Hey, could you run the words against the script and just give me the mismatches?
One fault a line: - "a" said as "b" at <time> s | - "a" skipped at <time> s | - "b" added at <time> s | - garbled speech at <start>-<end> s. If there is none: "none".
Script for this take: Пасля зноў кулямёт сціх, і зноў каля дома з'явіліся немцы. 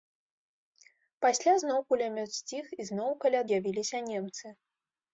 - "дома" skipped at 3.4 s